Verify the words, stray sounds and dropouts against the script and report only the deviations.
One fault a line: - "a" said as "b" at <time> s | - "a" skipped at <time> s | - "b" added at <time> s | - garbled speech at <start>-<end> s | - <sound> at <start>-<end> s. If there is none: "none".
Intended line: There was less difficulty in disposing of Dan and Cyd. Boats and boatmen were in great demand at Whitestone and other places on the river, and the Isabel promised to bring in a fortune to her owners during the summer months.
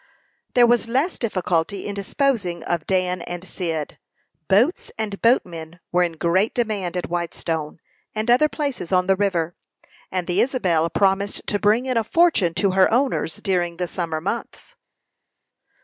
none